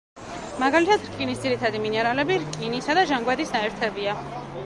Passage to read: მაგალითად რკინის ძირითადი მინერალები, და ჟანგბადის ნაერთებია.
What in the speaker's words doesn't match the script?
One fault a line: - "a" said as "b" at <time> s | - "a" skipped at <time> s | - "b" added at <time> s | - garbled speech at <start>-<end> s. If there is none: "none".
- "რკინისა" added at 2.5 s